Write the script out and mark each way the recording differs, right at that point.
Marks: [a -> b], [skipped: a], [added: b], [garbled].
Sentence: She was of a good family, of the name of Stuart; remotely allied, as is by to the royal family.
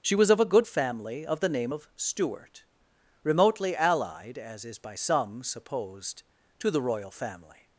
She was of a good family, of the name of Stuart; remotely allied, as is by [added: some supposed] to the royal family.